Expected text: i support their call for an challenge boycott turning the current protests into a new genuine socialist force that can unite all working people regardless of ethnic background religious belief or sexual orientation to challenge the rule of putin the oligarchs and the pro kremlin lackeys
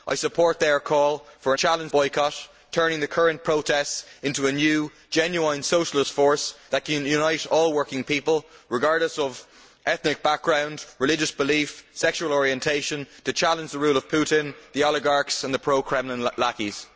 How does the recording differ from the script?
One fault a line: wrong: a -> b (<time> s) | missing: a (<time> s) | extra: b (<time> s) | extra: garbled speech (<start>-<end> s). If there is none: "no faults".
no faults